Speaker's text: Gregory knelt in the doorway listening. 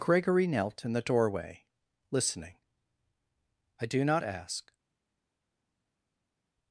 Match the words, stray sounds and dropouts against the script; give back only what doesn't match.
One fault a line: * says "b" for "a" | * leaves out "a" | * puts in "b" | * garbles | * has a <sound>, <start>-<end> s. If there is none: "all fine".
* puts in "I do not ask"